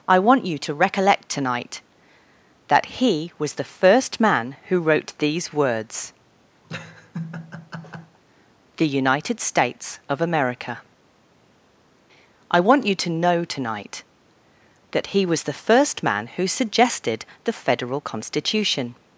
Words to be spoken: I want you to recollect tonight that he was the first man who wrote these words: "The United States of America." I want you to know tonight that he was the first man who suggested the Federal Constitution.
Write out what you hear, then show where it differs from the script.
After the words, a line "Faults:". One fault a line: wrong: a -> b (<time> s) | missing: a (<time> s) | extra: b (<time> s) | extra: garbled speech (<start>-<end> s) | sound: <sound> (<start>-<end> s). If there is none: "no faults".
I want you to recollect tonight that he was the first man who wrote these words: "The United States of America." I want you to know tonight that he was the first man who suggested the Federal Constitution.
Faults:
sound: laugh (6.6-8.2 s)